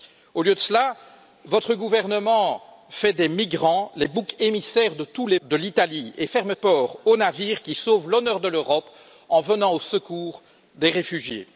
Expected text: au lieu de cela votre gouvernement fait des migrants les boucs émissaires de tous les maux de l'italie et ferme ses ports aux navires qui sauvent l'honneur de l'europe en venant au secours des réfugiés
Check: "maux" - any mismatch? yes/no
yes